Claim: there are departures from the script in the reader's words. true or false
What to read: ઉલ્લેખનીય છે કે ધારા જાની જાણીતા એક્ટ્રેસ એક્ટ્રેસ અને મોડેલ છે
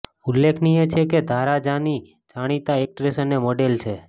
true